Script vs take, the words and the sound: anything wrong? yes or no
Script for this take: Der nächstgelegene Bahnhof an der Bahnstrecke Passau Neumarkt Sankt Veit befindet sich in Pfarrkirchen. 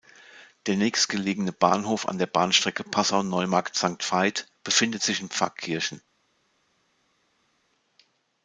no